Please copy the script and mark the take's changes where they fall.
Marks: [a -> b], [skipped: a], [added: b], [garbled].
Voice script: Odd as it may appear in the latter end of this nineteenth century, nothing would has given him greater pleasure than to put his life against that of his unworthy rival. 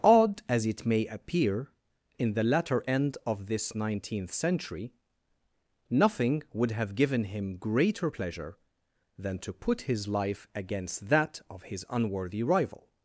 Odd as it may appear in the latter end of this nineteenth century, nothing would [has -> have] given him greater pleasure than to put his life against that of his unworthy rival.